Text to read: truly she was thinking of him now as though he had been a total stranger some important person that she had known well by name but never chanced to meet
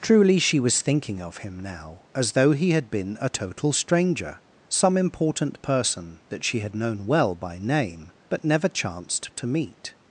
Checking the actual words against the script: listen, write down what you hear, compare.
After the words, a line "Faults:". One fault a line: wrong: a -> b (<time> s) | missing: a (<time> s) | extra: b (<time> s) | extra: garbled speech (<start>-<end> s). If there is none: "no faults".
truly she was thinking of him now as though he had been a total stranger some important person that she had known well by name but never chanced to meet
Faults:
no faults